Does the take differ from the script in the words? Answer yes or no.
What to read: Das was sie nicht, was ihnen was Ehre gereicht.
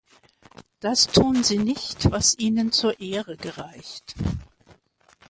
yes